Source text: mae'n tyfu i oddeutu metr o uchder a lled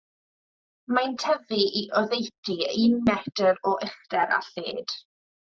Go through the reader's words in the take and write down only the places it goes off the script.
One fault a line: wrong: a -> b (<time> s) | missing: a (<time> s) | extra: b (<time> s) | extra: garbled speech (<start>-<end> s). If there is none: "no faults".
extra: un (2.9 s)